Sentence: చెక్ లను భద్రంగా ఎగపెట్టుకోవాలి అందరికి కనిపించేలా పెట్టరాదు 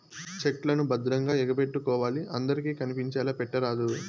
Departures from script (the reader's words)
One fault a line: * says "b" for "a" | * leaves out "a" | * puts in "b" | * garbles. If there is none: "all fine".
all fine